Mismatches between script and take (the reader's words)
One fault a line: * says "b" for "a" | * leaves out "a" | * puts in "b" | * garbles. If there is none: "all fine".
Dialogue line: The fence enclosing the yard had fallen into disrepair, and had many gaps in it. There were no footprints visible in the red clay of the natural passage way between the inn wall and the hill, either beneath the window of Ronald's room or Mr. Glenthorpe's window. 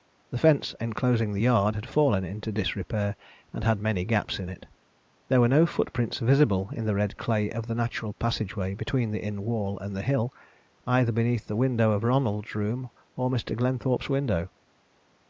all fine